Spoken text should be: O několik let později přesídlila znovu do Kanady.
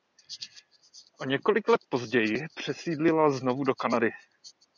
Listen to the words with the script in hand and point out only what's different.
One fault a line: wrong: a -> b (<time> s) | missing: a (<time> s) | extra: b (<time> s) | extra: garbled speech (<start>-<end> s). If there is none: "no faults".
no faults